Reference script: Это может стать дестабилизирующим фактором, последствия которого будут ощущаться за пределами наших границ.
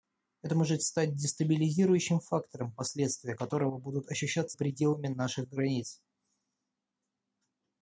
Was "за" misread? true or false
true